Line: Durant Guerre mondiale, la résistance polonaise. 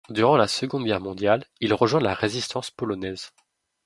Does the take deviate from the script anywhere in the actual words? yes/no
yes